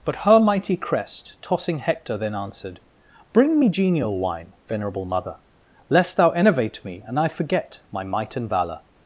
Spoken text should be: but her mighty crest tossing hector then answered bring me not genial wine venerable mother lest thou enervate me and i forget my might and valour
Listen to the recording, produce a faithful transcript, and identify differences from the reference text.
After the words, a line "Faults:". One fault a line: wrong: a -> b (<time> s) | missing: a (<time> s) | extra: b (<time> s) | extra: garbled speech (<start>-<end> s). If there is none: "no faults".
but her mighty crest tossing hector then answered bring me genial wine venerable mother lest thou enervate me and i forget my might and valour
Faults:
missing: not (3.7 s)